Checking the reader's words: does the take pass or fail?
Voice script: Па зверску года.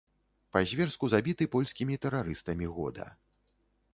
fail